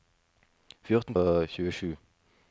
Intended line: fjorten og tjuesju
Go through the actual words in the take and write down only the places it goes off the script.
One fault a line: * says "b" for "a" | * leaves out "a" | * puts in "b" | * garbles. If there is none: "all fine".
all fine